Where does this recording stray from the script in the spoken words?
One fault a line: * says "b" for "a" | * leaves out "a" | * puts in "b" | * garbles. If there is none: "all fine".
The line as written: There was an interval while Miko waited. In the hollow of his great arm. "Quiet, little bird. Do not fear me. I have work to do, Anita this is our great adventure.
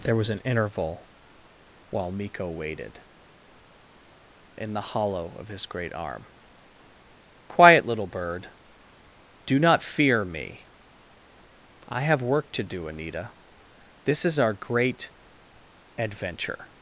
all fine